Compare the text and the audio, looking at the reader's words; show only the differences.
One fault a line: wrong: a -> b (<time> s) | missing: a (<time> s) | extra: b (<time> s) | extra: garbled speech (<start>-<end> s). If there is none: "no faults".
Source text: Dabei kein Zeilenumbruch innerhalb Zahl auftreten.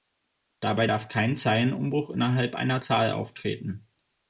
extra: darf (0.8 s)
extra: einer (2.5 s)